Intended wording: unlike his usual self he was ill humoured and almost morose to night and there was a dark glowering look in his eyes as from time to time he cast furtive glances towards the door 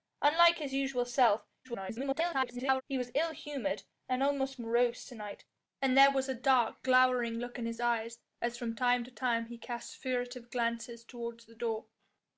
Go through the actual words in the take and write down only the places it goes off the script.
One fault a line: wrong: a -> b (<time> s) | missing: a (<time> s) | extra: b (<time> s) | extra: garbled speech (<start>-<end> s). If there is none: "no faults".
extra: garbled speech (1.6-2.8 s)